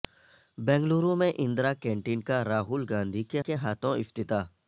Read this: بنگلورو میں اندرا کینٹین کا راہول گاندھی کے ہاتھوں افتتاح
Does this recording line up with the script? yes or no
no